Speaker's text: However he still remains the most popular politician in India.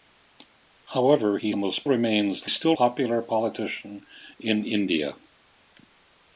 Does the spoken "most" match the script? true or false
false